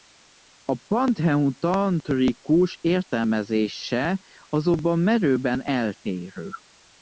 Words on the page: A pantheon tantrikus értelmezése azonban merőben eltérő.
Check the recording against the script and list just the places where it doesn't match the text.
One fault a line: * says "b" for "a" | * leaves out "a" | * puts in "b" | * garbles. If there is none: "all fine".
all fine